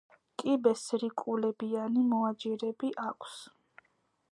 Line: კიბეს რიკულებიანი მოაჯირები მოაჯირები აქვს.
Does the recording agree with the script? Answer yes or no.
no